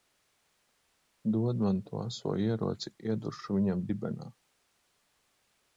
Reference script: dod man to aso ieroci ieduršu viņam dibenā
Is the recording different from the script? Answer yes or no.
no